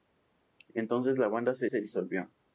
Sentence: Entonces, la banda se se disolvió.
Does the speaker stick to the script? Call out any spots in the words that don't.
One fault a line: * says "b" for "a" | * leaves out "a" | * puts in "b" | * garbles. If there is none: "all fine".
all fine